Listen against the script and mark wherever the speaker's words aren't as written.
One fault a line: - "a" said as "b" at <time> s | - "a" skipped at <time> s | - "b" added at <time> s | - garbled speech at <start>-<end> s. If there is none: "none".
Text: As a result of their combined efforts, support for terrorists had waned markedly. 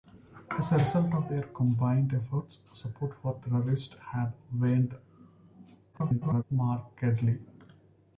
- garbled speech at 5.9-6.4 s